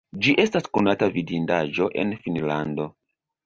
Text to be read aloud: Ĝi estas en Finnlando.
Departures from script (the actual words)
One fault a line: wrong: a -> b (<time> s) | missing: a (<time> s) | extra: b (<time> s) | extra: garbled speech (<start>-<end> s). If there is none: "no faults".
extra: konata vidindaĵo (0.8 s)